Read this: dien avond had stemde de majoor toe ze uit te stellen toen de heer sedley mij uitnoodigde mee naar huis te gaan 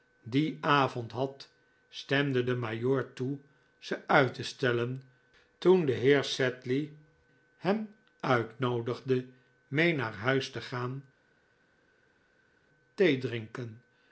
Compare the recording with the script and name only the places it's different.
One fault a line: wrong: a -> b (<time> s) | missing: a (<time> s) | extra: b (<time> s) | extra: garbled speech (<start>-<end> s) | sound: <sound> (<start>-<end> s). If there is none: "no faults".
wrong: mij -> hem (7.6 s)